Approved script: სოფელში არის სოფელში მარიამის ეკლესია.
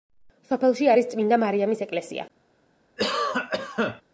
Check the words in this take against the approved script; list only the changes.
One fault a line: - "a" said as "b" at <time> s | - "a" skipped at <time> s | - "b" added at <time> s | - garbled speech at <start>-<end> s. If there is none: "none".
- "სოფელში" said as "წმინდა" at 1.1 s